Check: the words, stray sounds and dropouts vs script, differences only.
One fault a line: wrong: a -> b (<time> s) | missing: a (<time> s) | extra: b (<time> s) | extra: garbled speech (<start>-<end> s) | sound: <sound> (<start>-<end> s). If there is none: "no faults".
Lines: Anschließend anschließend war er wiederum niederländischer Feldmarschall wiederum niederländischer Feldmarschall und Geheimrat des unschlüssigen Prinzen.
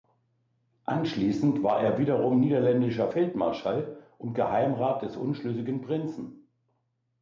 missing: anschließend (1.6 s)
missing: wiederum niederländischer Feldmarschall (4.0 s)